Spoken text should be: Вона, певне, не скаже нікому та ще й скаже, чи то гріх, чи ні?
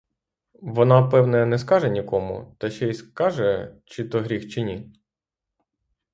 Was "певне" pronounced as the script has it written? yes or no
yes